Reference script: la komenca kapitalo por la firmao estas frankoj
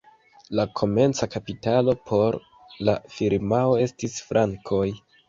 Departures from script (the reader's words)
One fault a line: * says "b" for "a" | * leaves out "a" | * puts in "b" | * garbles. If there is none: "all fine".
* says "estis" for "estas"